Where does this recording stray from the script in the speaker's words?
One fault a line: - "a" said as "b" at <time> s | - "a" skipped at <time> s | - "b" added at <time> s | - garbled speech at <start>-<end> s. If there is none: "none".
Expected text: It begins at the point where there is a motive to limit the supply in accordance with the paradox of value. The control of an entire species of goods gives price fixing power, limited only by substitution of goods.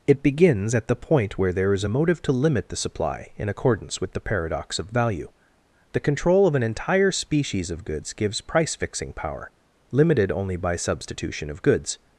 none